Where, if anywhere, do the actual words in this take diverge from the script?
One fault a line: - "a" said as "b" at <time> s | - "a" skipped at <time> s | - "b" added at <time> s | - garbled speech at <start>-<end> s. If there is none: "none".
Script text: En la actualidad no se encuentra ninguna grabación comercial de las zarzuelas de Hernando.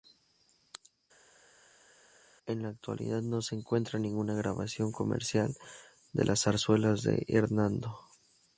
none